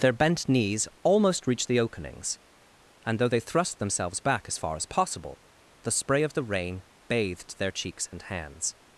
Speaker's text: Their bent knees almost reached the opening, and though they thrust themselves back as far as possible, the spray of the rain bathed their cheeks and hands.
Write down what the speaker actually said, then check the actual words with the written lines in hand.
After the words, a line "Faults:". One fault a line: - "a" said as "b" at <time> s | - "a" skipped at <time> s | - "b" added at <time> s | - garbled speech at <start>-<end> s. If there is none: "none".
Their bent knees almost reached the openings, and though they thrust themselves back as far as possible, the spray of the rain bathed their cheeks and hands.
Faults:
- "opening" said as "openings" at 1.8 s